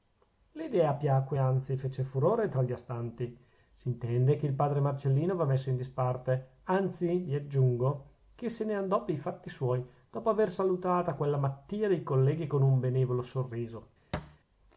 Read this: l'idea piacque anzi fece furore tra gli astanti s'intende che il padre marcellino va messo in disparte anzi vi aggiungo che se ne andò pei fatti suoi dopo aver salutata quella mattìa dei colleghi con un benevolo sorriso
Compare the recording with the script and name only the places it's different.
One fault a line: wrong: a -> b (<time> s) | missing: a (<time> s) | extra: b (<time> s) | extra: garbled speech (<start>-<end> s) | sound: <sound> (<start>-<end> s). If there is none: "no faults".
sound: thud (14.1-14.4 s)